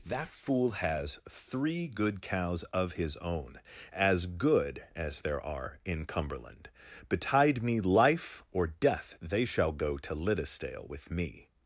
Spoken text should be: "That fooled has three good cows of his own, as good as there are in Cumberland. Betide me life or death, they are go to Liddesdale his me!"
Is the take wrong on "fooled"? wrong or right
wrong